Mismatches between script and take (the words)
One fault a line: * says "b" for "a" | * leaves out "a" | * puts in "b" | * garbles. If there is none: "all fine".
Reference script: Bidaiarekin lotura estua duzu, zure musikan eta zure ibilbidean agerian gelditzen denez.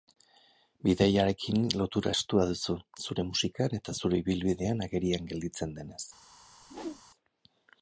all fine